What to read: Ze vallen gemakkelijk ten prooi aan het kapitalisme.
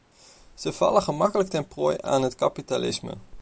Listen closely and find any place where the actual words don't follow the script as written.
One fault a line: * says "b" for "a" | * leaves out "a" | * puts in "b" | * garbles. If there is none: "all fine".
all fine